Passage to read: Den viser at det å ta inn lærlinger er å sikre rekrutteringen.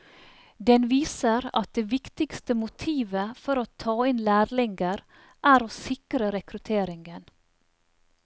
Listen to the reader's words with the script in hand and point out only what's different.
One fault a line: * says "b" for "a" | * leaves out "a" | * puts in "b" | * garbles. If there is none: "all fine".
* puts in "viktigste motivet for"